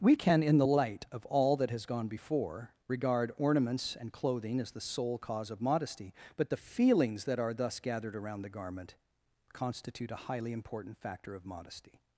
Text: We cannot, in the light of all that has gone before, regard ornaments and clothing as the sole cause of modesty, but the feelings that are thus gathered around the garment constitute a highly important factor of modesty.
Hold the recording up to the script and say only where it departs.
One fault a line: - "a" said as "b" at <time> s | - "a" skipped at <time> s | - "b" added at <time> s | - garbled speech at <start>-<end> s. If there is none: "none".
- "cannot" said as "can" at 0.1 s